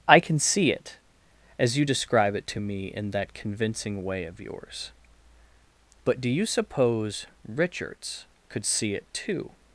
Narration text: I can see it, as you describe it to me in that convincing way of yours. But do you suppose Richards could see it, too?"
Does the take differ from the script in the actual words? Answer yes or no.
no